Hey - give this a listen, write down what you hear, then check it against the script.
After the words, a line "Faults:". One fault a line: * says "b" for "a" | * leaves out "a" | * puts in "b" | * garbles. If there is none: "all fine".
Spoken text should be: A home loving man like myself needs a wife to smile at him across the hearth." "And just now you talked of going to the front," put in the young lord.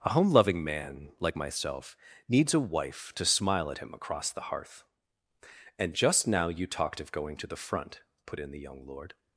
A home loving man like myself needs a wife to smile at him across the hearth." "And just now you talked of going to the front," put in the young lord.
Faults:
all fine